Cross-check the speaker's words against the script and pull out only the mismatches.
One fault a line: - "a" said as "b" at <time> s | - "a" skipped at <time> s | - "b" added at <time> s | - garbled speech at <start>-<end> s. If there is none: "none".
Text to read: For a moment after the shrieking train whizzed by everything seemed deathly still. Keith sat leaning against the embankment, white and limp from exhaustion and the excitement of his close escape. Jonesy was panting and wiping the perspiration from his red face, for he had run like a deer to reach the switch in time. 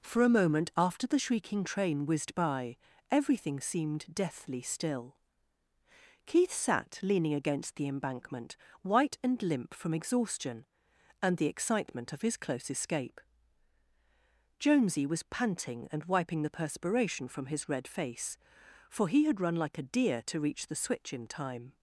none